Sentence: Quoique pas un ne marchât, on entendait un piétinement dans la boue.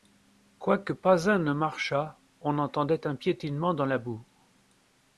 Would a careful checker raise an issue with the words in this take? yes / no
no